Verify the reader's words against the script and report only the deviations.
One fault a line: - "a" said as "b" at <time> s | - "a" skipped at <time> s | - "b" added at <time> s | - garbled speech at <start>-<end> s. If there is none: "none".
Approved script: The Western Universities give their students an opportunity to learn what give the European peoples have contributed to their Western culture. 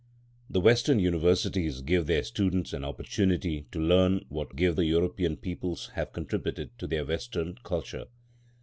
none